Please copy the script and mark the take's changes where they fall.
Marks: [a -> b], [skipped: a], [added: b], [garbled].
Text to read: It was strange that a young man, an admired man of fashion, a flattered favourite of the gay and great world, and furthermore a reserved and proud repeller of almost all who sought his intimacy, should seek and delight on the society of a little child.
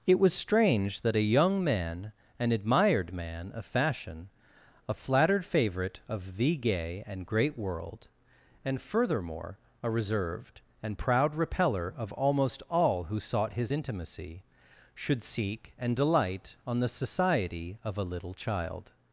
It was strange that a young man, an admired man of fashion, a flattered favourite of the gay and great world, and furthermore a reserved and proud repeller of almost all who sought his intimacy, should seek and delight on the society of a little child.